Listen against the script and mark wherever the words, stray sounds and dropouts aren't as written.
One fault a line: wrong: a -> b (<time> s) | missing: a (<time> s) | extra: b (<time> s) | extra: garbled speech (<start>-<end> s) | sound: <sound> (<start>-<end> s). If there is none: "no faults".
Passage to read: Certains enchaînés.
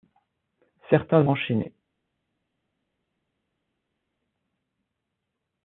no faults